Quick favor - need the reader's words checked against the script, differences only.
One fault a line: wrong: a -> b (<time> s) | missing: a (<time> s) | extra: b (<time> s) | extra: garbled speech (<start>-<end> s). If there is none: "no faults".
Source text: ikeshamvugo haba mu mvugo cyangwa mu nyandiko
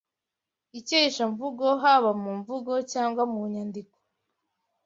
no faults